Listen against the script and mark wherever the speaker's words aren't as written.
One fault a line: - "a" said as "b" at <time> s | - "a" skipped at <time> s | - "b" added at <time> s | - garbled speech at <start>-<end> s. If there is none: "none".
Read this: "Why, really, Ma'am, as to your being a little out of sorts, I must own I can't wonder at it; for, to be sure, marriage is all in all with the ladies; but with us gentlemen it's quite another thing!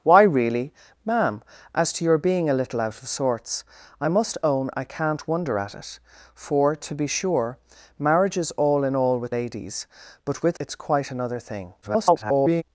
- "the" skipped at 9.3 s
- "us gentlemen" skipped at 10.6 s
- garbled speech at 11.8-12.6 s